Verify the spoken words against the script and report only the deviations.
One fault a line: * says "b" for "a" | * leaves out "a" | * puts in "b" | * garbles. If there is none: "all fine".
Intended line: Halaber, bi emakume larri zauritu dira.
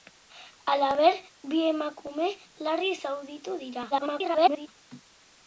* garbles